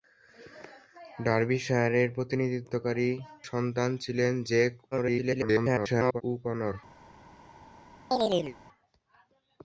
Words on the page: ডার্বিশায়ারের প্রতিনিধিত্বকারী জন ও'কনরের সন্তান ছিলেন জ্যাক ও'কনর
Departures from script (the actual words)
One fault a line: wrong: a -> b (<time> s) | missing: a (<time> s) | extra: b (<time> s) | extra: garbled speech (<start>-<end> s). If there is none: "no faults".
missing: জন ও'কনরের (3.1 s)
extra: garbled speech (4.9-6.2 s)